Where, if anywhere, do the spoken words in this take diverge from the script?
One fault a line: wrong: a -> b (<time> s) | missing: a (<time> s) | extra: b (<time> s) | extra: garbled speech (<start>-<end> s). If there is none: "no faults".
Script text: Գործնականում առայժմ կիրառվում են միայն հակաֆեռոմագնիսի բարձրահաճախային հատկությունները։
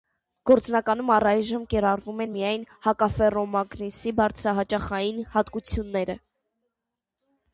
no faults